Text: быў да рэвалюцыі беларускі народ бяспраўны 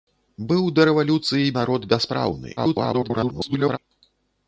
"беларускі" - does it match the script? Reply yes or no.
no